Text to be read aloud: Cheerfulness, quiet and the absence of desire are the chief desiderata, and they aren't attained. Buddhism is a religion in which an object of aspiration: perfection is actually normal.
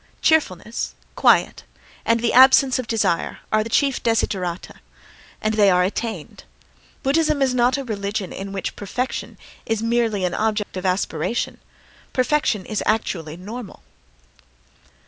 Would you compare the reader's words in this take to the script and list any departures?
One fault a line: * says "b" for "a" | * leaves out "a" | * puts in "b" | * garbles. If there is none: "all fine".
* says "are" for "aren't"
* puts in "not"
* puts in "perfection is merely"